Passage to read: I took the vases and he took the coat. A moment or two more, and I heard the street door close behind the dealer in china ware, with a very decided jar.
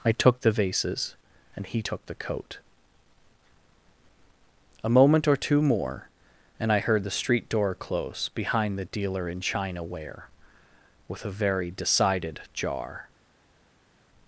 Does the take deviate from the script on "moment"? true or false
false